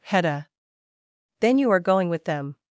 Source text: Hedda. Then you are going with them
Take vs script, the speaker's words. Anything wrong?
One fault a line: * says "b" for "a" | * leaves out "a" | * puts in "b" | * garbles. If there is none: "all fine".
all fine